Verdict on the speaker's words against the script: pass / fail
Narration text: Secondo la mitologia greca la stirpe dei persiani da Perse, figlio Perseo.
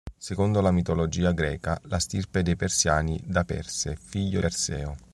pass